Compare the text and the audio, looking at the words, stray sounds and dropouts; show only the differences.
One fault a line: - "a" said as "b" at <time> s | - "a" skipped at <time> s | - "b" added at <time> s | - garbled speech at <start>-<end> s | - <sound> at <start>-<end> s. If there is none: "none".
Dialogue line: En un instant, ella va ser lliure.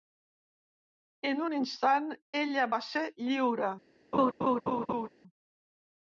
- laugh at 4.1-5.1 s